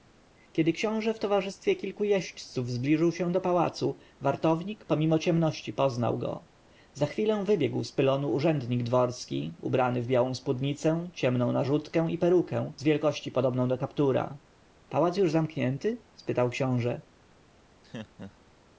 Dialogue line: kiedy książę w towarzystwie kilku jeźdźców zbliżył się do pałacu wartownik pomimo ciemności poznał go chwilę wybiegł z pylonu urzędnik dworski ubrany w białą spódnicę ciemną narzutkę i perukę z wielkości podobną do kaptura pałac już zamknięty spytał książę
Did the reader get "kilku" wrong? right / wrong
right